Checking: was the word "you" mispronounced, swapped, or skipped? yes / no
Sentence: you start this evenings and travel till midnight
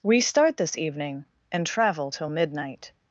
yes